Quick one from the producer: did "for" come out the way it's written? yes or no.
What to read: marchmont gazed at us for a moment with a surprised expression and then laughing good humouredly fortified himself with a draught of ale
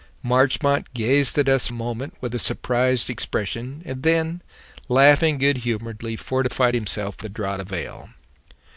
no